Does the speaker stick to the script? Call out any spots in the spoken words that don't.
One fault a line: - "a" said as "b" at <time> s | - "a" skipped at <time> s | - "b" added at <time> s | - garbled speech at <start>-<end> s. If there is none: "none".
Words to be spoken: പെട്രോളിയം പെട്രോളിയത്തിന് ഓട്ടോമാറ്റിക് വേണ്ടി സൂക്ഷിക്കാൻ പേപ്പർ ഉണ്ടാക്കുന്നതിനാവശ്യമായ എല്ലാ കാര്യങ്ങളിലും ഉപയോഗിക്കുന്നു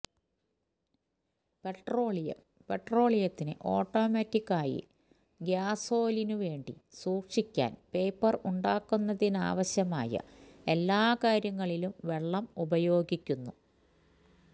- "ആയി ഗ്യാസോലിനു" added at 4.5 s
- "വെള്ളം" added at 12.1 s